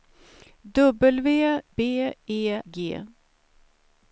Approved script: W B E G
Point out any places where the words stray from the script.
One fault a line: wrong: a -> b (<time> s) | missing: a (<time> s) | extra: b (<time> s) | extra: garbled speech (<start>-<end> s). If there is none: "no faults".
no faults